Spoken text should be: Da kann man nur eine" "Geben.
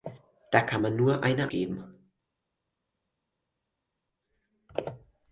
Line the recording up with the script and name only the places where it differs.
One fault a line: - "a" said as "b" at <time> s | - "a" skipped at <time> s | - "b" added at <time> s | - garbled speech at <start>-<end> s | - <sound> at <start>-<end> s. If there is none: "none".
none